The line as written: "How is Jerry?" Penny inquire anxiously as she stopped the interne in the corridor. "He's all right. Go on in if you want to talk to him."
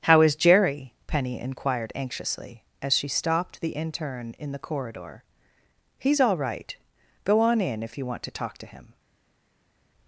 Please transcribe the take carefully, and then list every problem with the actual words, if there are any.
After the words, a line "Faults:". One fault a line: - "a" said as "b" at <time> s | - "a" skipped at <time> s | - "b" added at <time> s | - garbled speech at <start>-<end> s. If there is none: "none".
"How is Jerry?" Penny inquired anxiously as she stopped the interne in the corridor. "He's all right. Go on in if you want to talk to him."
Faults:
- "inquire" said as "inquired" at 1.4 s